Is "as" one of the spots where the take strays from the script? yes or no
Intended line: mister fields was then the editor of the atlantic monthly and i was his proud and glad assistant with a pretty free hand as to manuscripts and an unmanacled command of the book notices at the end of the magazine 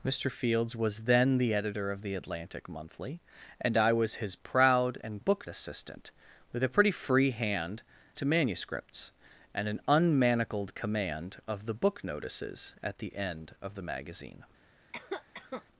yes